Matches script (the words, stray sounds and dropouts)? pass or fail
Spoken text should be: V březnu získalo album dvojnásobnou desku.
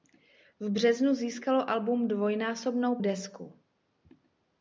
pass